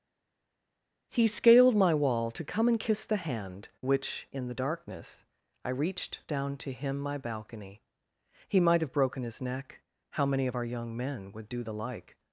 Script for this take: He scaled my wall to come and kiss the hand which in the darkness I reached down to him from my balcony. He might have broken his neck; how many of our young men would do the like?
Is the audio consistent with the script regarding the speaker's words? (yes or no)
no